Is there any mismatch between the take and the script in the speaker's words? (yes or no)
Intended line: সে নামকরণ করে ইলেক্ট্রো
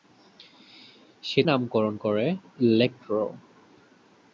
no